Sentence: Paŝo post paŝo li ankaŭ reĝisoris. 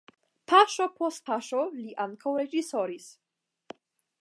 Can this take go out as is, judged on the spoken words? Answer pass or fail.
pass